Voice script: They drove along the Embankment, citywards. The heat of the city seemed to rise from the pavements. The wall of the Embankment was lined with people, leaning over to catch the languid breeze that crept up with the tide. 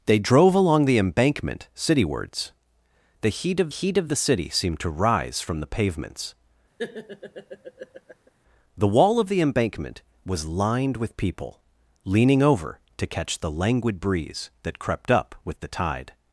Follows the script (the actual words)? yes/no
no